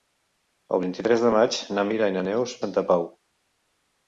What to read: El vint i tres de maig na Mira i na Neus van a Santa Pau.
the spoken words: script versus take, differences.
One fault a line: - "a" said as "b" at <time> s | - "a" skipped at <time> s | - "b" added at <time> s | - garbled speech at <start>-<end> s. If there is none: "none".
- "van" skipped at 2.6 s